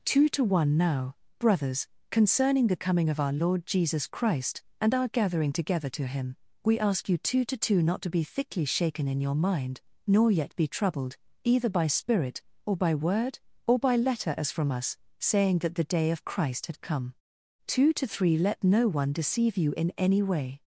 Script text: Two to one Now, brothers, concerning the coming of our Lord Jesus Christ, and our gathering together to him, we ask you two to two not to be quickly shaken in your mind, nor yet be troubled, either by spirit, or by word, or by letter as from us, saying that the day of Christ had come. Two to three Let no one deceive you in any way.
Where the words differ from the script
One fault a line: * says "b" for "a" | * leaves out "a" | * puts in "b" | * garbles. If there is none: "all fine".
* says "thickly" for "quickly"